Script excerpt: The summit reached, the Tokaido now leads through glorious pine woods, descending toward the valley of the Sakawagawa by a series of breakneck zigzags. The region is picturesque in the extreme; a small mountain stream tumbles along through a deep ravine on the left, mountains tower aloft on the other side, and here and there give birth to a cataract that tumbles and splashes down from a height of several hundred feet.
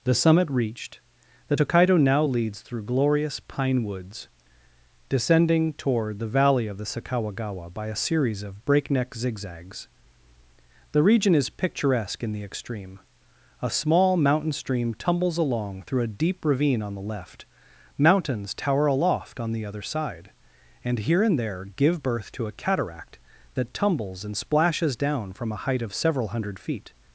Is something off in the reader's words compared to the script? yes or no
no